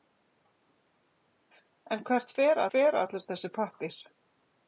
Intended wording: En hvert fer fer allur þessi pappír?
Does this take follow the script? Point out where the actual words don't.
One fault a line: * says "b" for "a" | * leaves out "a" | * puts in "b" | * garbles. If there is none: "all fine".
all fine